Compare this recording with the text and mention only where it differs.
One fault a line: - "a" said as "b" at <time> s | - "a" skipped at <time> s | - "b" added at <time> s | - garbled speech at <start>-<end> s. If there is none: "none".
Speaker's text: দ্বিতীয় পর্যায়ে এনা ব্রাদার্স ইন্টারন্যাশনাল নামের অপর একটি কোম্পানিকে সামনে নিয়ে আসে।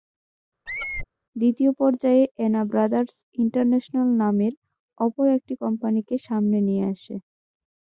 none